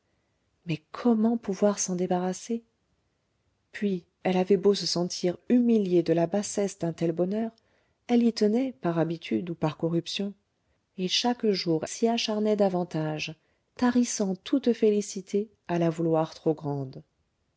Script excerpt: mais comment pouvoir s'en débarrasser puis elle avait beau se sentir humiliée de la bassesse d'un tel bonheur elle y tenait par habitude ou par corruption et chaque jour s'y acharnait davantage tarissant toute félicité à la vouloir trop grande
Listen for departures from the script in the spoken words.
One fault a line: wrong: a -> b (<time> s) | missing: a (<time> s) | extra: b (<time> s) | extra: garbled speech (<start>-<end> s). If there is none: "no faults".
no faults